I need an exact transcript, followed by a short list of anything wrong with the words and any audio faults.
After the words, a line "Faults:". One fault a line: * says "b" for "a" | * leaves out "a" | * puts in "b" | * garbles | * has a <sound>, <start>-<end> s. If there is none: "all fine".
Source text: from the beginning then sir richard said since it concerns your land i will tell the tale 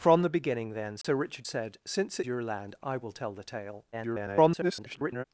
from the beginning then sir richard said since your land i will tell the tale [garbled]
Faults:
* has a dropout, 1.0-1.0 s
* leaves out "it concerns"
* garbles